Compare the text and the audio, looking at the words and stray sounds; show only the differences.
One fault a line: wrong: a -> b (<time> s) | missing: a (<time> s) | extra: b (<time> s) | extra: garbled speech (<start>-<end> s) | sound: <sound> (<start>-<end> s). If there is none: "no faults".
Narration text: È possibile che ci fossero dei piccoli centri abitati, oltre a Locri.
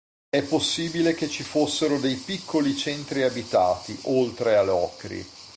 no faults